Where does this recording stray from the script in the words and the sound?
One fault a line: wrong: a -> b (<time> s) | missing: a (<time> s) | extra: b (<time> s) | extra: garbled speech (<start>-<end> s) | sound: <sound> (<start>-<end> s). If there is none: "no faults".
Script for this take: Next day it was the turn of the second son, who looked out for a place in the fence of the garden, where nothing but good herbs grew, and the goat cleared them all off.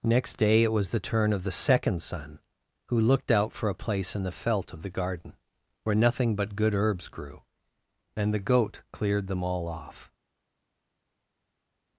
wrong: fence -> felt (4.3 s)